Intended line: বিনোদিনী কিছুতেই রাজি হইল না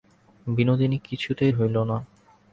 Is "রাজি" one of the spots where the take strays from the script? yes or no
yes